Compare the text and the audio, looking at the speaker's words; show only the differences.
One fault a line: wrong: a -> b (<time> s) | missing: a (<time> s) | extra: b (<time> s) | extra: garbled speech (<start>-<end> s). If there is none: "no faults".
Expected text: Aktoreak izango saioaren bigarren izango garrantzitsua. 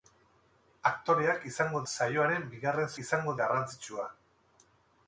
no faults